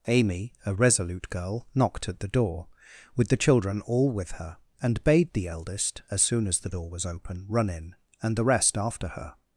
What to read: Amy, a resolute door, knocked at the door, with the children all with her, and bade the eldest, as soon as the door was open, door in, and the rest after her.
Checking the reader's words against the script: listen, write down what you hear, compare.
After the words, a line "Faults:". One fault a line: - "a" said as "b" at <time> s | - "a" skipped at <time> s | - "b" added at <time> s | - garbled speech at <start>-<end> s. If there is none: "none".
Amy, a resolute girl, knocked at the door, with the children all with her, and bade the eldest, as soon as the door was open, run in, and the rest after her.
Faults:
- "door" said as "girl" at 1.3 s
- "door" said as "run" at 7.5 s